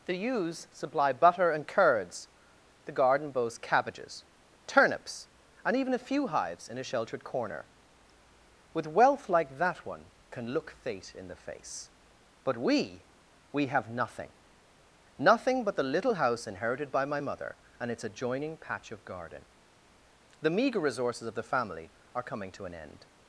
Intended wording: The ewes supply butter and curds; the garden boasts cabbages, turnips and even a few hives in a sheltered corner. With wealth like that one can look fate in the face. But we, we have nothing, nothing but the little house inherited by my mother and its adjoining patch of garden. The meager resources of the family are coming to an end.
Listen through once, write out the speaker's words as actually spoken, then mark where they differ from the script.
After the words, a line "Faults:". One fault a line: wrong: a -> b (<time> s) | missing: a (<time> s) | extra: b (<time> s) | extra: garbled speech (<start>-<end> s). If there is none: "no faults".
The ewes supply butter and curds; the garden boasts cabbages, turnips and even a few hives in a sheltered corner. With wealth like that one can look fate in the face. But we, we have nothing, nothing but the little house inherited by my mother and its adjoining patch of garden. The meager resources of the family are coming to an end.
Faults:
no faults